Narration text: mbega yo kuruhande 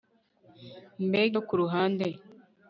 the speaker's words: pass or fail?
pass